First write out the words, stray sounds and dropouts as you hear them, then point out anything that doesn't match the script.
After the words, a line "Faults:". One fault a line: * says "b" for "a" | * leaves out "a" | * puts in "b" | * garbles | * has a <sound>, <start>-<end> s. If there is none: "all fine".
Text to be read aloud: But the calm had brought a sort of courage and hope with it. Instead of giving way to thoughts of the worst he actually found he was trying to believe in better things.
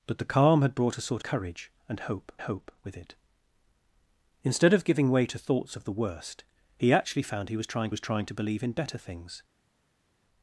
But the calm had brought a sort courage and hope hope with it. Instead of giving way to thoughts of the worst he actually found he was trying was trying to believe in better things.
Faults:
* leaves out "of"
* puts in "hope"
* puts in "was trying"